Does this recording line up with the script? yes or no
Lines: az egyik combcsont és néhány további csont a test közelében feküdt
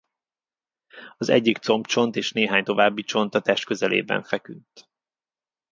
yes